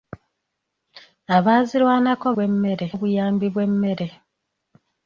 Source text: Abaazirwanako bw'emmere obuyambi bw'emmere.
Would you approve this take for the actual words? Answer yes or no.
yes